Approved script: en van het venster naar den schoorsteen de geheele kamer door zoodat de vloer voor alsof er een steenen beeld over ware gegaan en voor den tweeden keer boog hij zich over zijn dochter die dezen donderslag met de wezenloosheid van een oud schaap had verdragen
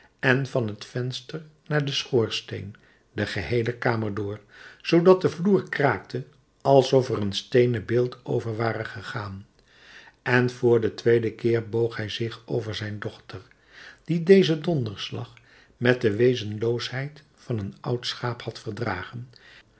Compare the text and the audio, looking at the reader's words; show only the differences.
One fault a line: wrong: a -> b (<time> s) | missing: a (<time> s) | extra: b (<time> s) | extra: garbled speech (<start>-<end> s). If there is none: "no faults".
wrong: voor -> kraakte (5.7 s)